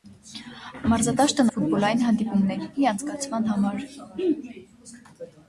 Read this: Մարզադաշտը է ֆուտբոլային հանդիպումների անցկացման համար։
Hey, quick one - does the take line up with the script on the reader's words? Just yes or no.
yes